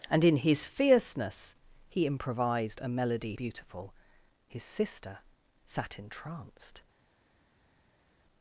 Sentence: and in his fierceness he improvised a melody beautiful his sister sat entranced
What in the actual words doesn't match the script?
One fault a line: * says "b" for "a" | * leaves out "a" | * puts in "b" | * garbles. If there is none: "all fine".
all fine